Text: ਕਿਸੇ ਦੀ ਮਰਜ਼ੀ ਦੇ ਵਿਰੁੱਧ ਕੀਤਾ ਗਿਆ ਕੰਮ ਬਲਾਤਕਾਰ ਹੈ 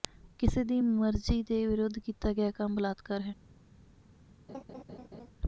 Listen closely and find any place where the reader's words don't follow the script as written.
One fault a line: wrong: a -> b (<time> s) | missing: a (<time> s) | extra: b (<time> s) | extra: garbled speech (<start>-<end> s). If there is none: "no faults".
no faults